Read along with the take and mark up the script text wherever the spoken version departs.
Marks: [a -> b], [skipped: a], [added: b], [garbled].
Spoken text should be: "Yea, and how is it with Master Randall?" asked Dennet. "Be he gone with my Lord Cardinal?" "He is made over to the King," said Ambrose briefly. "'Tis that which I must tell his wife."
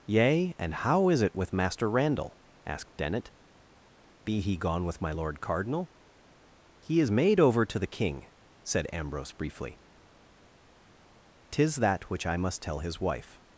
"Yea, and how is it with Master Randall?" asked Dennet. "Be he gone with my Lord Cardinal?" "He is made over to the King," said Ambrose briefly. "'Tis that which I must tell his wife."